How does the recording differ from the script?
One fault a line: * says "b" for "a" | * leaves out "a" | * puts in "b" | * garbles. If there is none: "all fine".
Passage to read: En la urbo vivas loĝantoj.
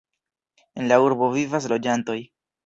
all fine